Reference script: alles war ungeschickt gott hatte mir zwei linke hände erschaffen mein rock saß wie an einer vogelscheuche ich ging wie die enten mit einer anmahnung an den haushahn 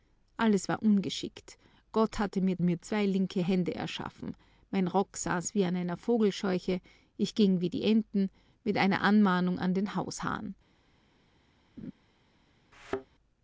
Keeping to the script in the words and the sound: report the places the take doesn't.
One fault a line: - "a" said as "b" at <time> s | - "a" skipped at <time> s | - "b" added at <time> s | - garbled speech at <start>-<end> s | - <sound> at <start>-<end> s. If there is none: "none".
- "mir" added at 2.6 s
- laugh at 11.8-11.9 s
- thud at 12.7-13.1 s